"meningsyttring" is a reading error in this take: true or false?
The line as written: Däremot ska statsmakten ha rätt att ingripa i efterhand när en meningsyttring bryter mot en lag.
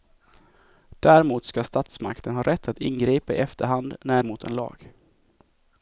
true